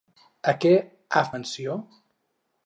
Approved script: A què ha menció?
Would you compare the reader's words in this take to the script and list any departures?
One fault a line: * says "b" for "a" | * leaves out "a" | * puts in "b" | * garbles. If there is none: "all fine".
all fine